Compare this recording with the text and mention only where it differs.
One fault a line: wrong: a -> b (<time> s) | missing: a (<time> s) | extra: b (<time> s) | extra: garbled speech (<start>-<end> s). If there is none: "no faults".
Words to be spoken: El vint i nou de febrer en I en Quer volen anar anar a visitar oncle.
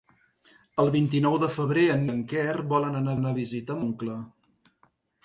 no faults